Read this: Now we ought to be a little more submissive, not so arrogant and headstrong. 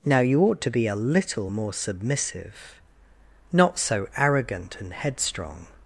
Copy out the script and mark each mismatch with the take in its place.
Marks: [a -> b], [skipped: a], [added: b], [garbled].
Now [we -> you] ought to be a little more submissive, not so arrogant and headstrong.